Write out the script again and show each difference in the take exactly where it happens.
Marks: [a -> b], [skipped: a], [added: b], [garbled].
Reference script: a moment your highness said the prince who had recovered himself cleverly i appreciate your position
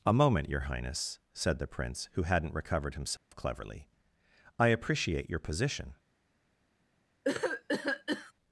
a moment your highness said the prince who [had -> hadn't] recovered himself cleverly i appreciate your position